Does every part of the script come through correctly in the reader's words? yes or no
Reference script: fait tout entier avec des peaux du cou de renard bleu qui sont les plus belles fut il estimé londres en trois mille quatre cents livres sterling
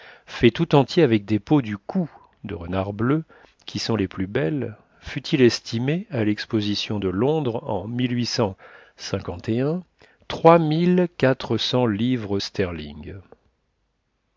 no